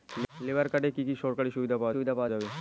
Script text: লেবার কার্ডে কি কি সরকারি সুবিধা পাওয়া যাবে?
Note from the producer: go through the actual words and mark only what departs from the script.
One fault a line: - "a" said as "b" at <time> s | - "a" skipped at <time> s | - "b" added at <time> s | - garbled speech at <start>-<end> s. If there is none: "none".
- "সুবিধা পাওয়া" added at 1.9 s